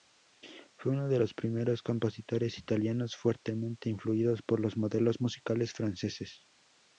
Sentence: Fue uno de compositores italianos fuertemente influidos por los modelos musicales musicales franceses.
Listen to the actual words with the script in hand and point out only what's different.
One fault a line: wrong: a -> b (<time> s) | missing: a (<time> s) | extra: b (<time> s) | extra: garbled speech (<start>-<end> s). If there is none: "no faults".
extra: los primeros (1.2 s)
missing: musicales (5.7 s)